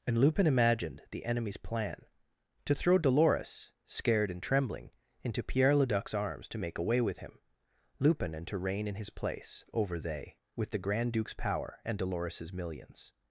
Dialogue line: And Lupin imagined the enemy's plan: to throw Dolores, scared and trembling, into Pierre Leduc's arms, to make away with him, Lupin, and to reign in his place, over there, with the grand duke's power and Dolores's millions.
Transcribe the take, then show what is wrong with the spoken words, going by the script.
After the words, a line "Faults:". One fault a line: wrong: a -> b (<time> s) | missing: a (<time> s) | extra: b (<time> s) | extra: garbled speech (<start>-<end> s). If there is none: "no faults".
And Lupin imagined the enemy's plan: to throw Dolores, scared and trembling, into Pierre Leduc's arms, to make away with him, Lupin, and to reign in his place, over they, with the grand duke's power and Dolores's millions.
Faults:
wrong: there -> they (10.0 s)